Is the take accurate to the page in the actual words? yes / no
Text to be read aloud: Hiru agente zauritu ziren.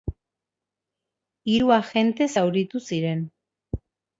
yes